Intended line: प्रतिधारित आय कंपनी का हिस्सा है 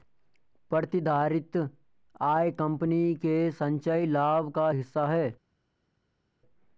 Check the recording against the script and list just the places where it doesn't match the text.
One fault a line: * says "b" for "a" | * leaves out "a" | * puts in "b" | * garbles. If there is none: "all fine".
* puts in "के संचयी लाभ"